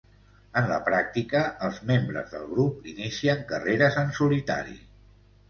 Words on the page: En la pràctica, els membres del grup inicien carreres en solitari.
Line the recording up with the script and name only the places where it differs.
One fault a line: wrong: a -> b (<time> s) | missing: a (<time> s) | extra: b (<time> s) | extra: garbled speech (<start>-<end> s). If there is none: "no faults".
no faults